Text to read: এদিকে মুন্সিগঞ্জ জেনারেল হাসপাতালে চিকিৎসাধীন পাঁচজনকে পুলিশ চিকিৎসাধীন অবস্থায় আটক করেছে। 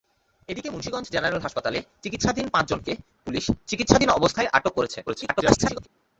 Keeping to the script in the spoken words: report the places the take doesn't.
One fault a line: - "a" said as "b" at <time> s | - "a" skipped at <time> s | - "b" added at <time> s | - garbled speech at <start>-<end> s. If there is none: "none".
- garbled speech at 5.1-5.9 s